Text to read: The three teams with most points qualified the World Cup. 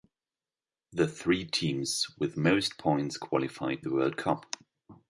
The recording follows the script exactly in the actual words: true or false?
true